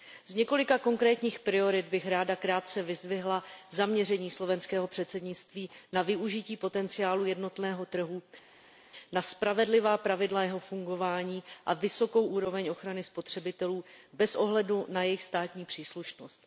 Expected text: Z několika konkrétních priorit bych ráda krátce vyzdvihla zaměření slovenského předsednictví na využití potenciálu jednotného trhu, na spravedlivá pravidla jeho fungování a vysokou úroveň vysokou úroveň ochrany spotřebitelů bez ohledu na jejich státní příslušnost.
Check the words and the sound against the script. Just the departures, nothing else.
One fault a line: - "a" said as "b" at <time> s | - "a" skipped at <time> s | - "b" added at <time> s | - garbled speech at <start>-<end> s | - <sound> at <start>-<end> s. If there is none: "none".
- "vysokou úroveň" skipped at 12.7 s